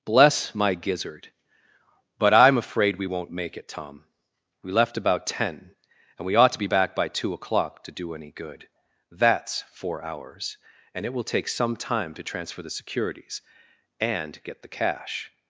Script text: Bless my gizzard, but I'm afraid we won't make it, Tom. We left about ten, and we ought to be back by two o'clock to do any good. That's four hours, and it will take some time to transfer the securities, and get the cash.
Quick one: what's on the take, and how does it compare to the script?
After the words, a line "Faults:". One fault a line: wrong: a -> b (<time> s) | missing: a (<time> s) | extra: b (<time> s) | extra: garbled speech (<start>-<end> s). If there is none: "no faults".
Bless my gizzard, but I'm afraid we won't make it, Tom. We left about ten, and we ought to be back by two o'clock to do any good. That's four hours, and it will take some time to transfer the securities, and get the cash.
Faults:
no faults